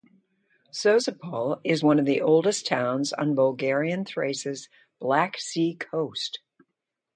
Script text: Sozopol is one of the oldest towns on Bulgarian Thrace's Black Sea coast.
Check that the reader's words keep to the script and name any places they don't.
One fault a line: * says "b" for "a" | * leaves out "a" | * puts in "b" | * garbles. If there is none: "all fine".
all fine